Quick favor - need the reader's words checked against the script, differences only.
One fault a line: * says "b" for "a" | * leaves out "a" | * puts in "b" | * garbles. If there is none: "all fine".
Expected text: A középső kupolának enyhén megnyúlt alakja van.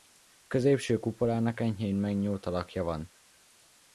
all fine